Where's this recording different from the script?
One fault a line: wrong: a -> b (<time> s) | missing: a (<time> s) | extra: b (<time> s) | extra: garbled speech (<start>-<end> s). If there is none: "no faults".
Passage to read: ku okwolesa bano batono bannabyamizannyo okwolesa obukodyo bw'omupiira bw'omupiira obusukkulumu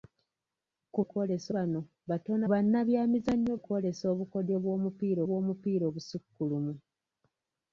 no faults